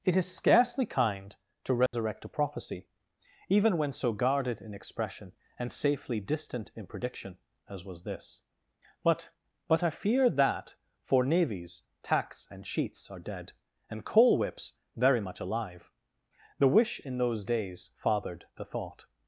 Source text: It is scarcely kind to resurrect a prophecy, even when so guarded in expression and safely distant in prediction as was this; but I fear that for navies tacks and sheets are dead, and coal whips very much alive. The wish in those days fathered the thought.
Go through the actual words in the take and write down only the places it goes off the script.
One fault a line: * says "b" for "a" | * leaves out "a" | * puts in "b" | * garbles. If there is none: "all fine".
* puts in "but"